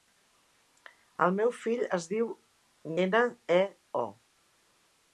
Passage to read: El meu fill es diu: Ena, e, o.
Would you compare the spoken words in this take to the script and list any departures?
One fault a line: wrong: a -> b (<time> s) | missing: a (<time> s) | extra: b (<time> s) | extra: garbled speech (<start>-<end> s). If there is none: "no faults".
no faults